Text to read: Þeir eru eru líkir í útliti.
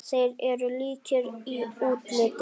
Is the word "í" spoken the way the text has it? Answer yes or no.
yes